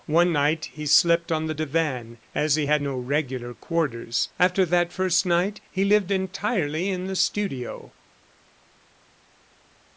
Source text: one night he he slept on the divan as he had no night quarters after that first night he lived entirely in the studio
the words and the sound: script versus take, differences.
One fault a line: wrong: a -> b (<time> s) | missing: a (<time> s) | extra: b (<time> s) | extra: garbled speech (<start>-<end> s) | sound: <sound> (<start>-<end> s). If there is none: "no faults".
missing: he (0.9 s)
wrong: night -> regular (3.0 s)